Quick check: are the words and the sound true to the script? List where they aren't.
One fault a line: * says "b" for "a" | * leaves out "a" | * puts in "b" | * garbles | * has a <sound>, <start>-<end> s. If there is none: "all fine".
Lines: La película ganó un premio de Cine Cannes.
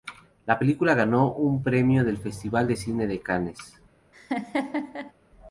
* puts in "del Festival"
* puts in "de"
* has a laugh, 4.1-5.1 s